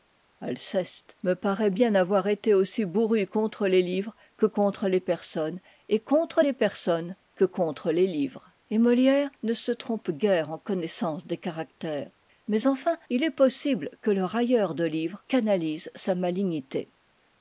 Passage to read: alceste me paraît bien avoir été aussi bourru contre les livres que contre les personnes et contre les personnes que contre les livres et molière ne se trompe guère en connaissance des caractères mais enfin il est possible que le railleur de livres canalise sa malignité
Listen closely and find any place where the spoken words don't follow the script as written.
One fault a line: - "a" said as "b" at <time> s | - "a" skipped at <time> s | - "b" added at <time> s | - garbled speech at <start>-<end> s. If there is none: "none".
none